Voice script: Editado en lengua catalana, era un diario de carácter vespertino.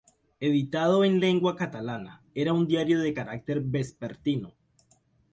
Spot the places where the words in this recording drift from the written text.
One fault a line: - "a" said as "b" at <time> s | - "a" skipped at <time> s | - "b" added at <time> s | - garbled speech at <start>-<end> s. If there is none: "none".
none